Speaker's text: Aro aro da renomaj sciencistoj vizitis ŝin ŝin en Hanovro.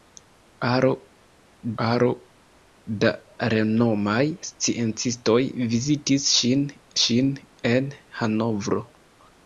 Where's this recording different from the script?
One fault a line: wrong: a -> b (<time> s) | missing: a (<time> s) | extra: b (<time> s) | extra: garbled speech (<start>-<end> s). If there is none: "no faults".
no faults